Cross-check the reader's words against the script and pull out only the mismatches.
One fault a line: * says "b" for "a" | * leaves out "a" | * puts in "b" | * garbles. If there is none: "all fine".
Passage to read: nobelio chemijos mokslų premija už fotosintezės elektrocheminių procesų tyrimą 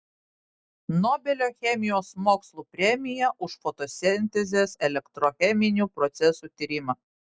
all fine